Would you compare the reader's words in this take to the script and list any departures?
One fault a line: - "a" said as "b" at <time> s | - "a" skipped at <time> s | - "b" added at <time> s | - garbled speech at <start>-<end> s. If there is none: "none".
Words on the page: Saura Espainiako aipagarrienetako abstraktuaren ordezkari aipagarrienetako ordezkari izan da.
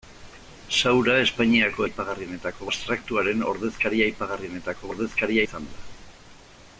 none